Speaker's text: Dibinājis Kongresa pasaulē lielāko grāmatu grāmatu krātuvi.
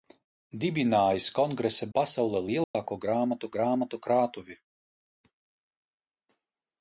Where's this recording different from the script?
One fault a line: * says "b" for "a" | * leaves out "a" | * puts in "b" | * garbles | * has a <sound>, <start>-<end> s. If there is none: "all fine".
* has a dropout, 2.6-2.7 s